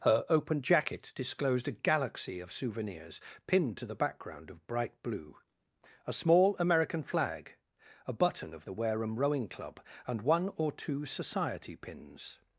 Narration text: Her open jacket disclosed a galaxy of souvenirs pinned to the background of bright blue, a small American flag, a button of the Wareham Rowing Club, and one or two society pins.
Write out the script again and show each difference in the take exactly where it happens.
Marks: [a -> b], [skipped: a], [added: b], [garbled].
Her open jacket disclosed a galaxy of souvenirs pinned to the background of bright blue, a small American flag, a button of the Wareham Rowing Club, and one or two society pins.